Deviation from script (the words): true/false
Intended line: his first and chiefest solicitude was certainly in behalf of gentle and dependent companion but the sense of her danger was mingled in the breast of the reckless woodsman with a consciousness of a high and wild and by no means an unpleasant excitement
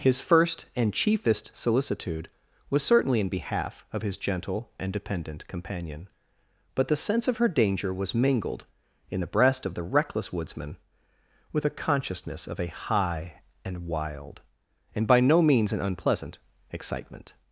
true